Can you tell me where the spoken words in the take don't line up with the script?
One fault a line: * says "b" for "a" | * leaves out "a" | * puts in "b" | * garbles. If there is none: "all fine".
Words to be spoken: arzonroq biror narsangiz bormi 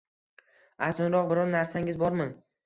all fine